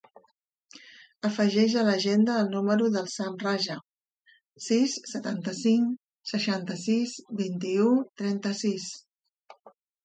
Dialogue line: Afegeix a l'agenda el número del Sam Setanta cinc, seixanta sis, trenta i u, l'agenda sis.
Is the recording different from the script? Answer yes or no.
yes